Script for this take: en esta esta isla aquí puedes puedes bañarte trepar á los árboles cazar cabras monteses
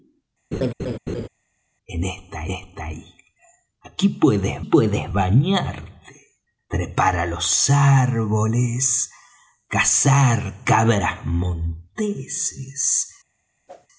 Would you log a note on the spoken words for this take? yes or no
no